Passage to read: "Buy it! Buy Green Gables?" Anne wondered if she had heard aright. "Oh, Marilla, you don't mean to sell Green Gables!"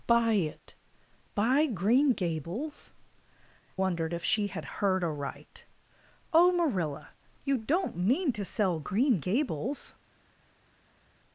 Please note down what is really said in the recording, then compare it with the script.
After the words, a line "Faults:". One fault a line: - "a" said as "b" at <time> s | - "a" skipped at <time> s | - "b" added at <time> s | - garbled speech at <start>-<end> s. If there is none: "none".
"Buy it! Buy Green Gables?" Wondered if she had heard aright. "Oh, Marilla, you don't mean to sell Green Gables!"
Faults:
- "Anne" skipped at 2.9 s